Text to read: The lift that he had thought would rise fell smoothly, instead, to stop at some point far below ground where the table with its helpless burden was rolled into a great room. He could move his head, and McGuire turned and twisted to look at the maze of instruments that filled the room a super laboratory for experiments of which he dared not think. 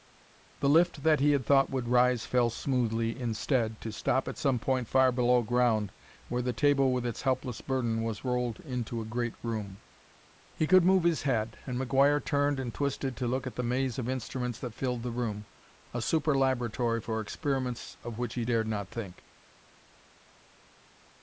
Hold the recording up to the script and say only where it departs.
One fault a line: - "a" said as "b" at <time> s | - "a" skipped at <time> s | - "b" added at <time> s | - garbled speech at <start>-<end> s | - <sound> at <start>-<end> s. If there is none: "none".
none